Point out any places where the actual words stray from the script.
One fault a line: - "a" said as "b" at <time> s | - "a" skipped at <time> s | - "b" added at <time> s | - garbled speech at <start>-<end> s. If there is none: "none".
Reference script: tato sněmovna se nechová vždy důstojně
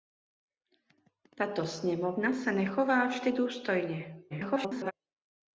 - garbled speech at 4.3-4.9 s